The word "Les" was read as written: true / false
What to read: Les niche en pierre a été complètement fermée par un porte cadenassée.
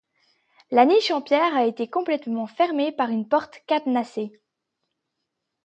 false